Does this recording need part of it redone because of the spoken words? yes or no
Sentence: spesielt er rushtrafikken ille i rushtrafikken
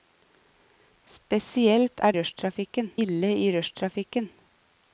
no